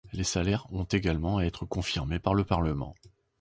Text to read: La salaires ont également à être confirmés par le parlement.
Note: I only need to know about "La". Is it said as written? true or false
false